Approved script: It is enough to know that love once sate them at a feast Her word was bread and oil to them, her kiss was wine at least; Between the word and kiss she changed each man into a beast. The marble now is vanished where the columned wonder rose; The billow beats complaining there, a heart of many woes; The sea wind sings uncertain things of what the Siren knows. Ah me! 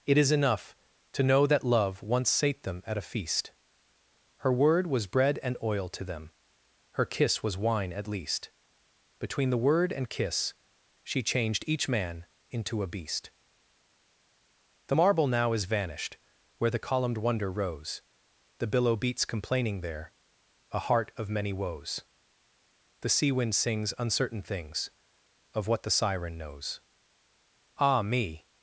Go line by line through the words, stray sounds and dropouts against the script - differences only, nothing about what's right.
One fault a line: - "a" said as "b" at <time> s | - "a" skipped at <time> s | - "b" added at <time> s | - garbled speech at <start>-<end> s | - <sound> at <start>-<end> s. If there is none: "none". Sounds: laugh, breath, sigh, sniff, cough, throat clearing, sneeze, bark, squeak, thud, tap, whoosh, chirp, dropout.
none